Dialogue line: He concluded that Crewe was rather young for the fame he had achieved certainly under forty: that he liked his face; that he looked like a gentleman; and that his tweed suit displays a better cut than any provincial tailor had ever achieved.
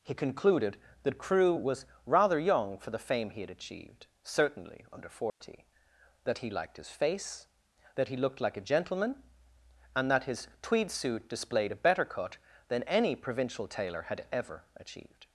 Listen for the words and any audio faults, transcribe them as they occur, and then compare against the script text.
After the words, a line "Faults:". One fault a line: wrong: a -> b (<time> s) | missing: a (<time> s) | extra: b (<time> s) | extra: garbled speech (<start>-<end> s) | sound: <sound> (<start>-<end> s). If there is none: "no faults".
He concluded that Crewe was rather young for the fame he had achieved certainly under forty: that he liked his face; that he looked like a gentleman; and that his tweed suit displayed a better cut than any provincial tailor had ever achieved.
Faults:
sound: dropout (5.3-5.4 s)
wrong: displays -> displayed (11.3 s)